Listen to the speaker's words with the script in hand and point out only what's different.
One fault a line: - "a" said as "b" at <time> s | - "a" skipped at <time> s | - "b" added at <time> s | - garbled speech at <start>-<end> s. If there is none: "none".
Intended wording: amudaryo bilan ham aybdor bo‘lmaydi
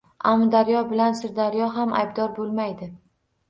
- "sirdaryo" added at 1.2 s